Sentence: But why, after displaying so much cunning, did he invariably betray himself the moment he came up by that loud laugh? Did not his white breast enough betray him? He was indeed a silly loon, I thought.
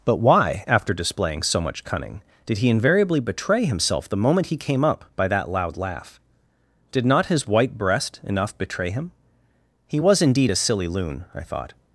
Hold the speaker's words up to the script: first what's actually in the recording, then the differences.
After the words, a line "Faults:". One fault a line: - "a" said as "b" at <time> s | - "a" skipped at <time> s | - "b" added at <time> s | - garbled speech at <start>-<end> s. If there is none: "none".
But why, after displaying so much cunning, did he invariably betray himself the moment he came up by that loud laugh? Did not his white breast enough betray him? He was indeed a silly loon, I thought.
Faults:
none